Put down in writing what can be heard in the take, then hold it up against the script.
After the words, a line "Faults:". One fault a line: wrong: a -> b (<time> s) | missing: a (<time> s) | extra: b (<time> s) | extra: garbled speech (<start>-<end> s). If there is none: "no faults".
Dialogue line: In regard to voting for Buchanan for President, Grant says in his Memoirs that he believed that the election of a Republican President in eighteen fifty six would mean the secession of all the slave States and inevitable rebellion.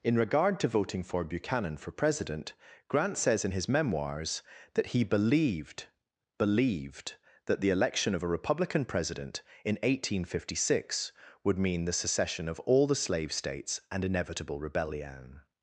In regard to voting for Buchanan for President, Grant says in his Memoirs that he believed believed that the election of a Republican President in eighteen fifty six would mean the secession of all the slave States and inevitable rebellion.
Faults:
extra: believed (6.4 s)